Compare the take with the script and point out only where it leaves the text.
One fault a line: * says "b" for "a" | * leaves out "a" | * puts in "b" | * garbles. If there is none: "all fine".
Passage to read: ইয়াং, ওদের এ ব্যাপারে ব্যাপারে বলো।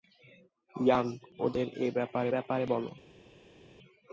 all fine